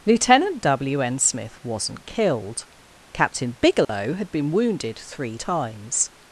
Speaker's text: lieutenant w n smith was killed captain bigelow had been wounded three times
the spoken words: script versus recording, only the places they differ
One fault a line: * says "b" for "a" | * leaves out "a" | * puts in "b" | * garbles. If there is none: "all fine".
* says "wasn't" for "was"